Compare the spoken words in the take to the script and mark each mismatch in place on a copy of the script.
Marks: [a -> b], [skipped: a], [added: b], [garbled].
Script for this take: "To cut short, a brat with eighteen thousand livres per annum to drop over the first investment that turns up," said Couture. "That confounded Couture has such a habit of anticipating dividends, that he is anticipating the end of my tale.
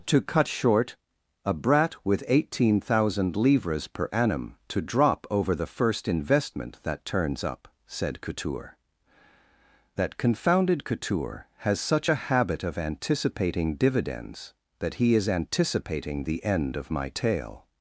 "To cut short, a brat with eighteen thousand livres per annum to drop over the first investment that turns up," said Couture. "That confounded Couture has such a habit of anticipating dividends, that he is anticipating the end of my tale.